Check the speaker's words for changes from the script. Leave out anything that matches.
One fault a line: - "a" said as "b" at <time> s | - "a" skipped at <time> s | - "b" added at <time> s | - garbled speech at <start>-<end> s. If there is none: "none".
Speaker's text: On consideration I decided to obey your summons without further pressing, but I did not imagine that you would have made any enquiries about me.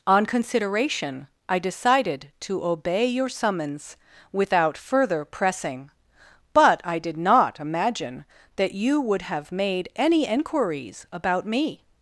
none